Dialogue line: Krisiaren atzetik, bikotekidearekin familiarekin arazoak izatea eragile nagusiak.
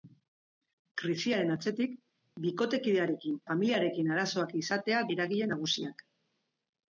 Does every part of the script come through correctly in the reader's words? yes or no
yes